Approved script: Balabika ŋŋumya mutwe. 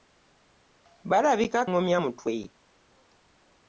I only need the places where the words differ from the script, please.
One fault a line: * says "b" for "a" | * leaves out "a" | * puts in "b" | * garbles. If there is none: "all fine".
all fine